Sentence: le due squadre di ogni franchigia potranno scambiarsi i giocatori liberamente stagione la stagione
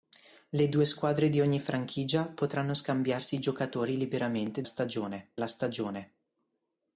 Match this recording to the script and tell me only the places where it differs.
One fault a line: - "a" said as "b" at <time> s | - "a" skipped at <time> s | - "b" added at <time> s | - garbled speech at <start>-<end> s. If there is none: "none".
none